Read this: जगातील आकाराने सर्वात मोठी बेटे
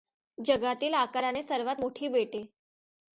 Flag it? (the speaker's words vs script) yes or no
no